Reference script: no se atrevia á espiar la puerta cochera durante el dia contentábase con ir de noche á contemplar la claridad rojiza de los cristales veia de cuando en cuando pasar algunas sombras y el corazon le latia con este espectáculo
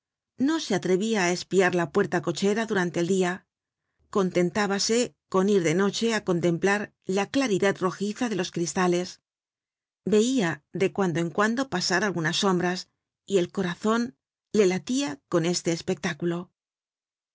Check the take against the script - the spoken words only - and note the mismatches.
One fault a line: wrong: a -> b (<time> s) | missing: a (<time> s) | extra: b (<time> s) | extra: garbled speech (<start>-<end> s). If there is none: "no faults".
no faults